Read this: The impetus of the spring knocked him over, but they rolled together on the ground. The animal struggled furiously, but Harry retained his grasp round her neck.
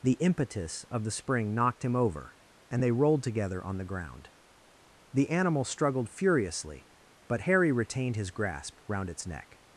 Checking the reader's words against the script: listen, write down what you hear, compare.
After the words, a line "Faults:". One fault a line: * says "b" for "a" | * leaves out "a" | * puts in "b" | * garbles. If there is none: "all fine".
The impetus of the spring knocked him over, and they rolled together on the ground. The animal struggled furiously, but Harry retained his grasp round its neck.
Faults:
* says "and" for "but"
* says "its" for "her"